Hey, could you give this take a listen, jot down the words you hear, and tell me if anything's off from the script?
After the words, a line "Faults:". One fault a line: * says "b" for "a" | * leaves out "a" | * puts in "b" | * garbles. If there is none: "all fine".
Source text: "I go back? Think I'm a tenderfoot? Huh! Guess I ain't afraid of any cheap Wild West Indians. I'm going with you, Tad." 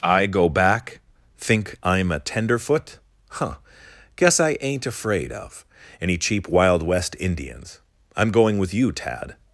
"I go back? Think I'm a tenderfoot? Huh! Guess I ain't afraid of any cheap Wild West Indians. I'm going with you, Tad."
Faults:
all fine